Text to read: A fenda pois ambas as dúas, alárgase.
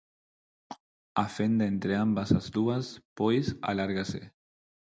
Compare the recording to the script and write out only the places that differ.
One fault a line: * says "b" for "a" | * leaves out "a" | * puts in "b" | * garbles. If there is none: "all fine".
* says "entre" for "pois"
* puts in "pois"